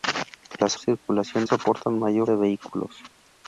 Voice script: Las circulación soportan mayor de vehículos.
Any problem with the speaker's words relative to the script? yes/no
no